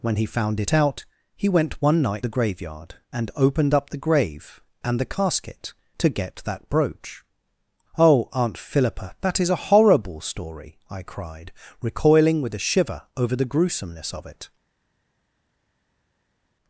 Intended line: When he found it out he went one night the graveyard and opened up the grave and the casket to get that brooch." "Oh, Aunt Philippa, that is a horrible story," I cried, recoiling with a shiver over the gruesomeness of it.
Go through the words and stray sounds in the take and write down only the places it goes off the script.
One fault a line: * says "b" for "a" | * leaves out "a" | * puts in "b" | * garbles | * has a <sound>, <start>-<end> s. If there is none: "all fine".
all fine